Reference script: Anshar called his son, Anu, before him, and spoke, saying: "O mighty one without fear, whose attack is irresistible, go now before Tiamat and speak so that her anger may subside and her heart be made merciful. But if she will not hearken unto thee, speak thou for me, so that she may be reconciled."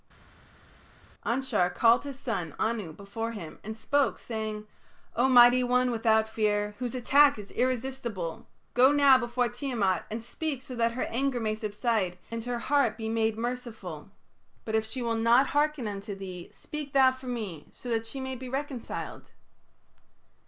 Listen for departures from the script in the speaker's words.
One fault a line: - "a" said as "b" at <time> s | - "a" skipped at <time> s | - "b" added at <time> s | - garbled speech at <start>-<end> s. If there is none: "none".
none